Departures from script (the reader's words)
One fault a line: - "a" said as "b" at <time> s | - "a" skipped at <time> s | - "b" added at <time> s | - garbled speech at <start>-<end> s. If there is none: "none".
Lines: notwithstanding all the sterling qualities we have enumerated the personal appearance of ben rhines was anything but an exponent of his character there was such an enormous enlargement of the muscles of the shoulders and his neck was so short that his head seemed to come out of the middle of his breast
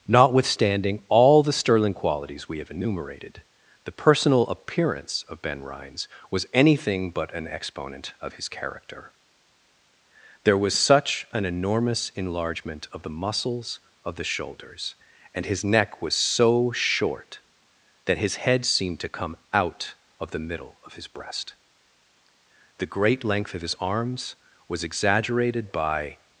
- "the great length of his arms was exaggerated by" added at 22.8 s